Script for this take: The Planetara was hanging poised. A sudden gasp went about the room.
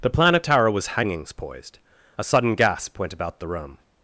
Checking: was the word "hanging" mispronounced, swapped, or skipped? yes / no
yes